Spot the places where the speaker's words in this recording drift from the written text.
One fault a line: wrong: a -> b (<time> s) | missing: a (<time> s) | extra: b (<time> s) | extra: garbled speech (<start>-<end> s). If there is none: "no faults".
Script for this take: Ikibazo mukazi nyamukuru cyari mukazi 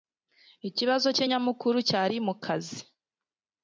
wrong: mukazi -> cye (1.1 s)